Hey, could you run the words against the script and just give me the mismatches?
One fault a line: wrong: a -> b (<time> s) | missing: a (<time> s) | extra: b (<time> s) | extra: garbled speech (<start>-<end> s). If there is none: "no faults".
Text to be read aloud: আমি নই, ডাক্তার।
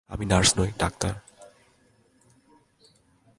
extra: নার্স (0.2 s)